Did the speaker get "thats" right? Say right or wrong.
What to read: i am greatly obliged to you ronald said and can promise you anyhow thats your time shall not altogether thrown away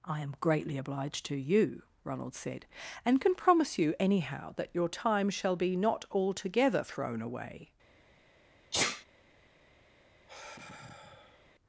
wrong